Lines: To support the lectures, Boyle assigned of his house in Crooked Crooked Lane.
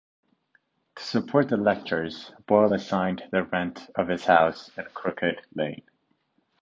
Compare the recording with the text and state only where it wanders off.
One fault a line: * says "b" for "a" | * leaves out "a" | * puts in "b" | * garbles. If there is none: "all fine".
* puts in "the rent"
* leaves out "Crooked"